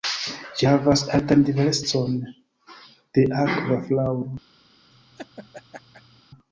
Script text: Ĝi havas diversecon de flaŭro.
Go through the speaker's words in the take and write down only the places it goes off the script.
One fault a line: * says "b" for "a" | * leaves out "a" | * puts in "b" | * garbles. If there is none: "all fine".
* puts in "altan"
* puts in "akva"